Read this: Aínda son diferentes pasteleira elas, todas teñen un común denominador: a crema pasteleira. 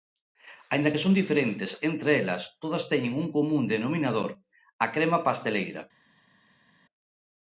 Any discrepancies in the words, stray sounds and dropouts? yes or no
yes